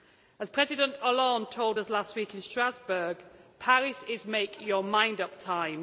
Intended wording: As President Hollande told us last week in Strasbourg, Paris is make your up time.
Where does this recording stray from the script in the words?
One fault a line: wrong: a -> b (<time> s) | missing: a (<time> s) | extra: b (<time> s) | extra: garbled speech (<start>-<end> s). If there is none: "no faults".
extra: mind (4.8 s)